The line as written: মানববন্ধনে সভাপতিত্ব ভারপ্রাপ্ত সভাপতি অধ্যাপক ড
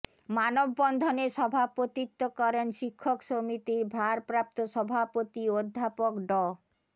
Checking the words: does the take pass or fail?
fail